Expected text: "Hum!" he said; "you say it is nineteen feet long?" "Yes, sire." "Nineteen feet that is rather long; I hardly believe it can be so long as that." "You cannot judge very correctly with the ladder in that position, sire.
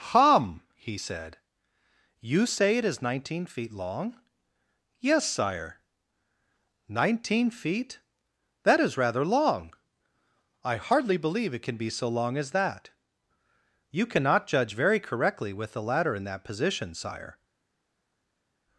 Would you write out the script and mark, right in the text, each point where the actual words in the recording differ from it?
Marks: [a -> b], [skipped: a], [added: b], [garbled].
"Hum!" he said; "you say it is nineteen feet long?" "Yes, sire." "Nineteen feet that is rather long; I hardly believe it can be so long as that." "You cannot judge very correctly with the ladder in that position, sire.